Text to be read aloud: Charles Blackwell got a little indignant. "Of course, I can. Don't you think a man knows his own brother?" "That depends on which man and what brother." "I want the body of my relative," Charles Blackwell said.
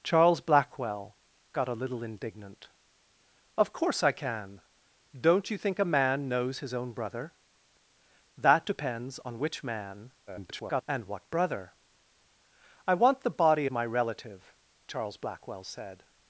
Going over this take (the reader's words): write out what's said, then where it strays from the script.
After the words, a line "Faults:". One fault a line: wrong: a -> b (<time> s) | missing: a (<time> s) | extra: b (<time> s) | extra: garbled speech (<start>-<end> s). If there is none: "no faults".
Charles Blackwell got a little indignant. "Of course, I can. Don't you think a man knows his own brother?" "That depends on which man [garbled] and what brother." "I want the body my relative," Charles Blackwell said.
Faults:
extra: garbled speech (10.3-10.8 s)
missing: of (13.7 s)